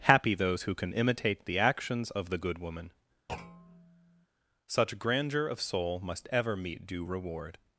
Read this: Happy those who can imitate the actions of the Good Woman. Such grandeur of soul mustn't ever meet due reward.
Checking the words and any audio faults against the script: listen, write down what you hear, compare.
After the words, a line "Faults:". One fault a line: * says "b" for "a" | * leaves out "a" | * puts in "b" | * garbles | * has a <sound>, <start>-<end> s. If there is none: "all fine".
Happy those who can imitate the actions of the Good Woman. Such grandeur of soul must ever meet due reward.
Faults:
* has a thud, 3.3-4.3 s
* says "must" for "mustn't"